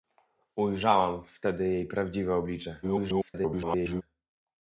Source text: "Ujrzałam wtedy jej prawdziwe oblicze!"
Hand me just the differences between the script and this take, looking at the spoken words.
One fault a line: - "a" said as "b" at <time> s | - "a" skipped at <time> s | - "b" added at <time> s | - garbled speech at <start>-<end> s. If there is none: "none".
- garbled speech at 2.8-4.0 s